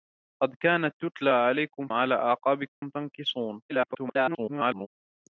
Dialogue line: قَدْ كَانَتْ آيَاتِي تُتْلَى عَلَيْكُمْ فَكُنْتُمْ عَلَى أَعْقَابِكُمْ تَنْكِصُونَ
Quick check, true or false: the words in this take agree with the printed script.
false